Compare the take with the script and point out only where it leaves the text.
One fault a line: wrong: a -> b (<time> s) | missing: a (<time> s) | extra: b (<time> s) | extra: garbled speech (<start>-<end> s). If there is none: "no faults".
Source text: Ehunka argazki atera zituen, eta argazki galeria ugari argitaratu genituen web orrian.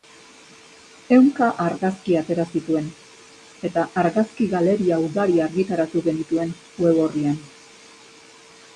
no faults